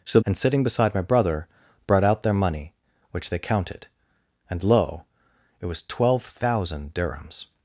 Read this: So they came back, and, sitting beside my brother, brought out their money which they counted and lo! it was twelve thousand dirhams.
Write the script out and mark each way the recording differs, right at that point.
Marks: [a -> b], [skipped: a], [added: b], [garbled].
So [skipped: they came back,] and, sitting beside my brother, brought out their money which they counted and lo! it was twelve thousand dirhams.